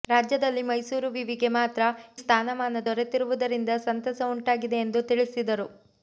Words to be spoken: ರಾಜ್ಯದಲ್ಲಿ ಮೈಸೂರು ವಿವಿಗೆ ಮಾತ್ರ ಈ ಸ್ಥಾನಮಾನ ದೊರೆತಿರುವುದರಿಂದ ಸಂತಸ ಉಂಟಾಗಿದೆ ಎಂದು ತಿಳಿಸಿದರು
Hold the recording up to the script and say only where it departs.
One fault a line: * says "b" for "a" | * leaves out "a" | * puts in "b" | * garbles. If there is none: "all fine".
* leaves out "ಈ"